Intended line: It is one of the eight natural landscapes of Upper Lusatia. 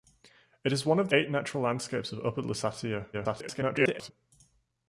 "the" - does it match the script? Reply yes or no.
no